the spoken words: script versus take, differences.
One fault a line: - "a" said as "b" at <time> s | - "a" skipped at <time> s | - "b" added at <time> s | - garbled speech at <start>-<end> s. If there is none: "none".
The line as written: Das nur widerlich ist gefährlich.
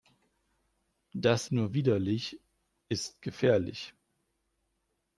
none